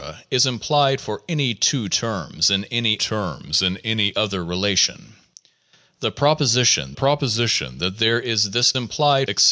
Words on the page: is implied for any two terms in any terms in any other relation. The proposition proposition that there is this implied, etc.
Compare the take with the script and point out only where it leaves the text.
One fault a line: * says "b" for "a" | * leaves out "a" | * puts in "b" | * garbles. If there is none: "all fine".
all fine